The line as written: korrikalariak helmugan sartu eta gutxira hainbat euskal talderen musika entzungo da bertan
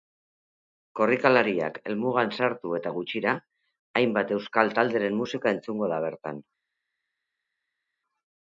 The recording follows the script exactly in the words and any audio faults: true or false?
true